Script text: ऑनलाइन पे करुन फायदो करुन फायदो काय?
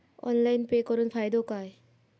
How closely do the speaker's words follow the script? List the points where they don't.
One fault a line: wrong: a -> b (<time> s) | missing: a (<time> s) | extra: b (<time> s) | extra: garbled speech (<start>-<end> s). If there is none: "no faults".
missing: करुन फायदो (1.4 s)